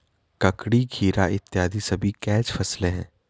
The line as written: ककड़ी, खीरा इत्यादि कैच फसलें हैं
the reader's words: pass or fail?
fail